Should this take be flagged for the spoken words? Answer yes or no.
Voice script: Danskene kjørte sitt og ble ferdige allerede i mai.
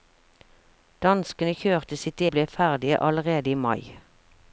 no